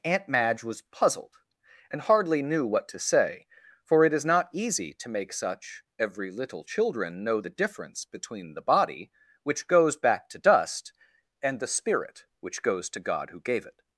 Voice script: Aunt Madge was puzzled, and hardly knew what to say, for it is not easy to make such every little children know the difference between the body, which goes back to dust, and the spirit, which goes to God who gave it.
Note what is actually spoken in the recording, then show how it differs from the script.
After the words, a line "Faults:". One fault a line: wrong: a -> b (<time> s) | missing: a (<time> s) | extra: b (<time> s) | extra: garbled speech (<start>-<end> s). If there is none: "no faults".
Aunt Madge was puzzled, and hardly knew what to say, for it is not easy to make such every little children know the difference between the body, which goes back to dust, and the spirit, which goes to God who gave it.
Faults:
no faults